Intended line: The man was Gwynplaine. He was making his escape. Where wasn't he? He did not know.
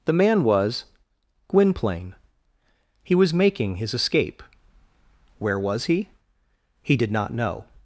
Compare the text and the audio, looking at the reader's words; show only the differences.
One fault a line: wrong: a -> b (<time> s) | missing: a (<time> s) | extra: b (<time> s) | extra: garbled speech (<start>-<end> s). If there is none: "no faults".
wrong: wasn't -> was (5.6 s)